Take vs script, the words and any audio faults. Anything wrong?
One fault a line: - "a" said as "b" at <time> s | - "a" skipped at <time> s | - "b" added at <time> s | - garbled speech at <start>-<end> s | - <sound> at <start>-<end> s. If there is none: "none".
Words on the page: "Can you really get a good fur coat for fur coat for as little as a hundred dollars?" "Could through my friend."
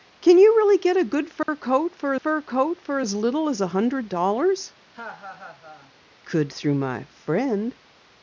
- dropout at 1.4-1.5 s
- laugh at 4.9-5.9 s